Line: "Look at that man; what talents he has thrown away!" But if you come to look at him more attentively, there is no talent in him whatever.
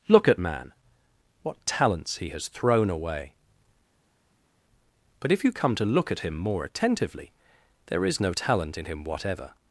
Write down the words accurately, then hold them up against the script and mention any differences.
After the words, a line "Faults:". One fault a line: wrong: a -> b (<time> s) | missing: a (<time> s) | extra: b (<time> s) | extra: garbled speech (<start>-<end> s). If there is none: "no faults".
"Look at man; what talents he has thrown away!" But if you come to look at him more attentively, there is no talent in him whatever.
Faults:
missing: that (0.4 s)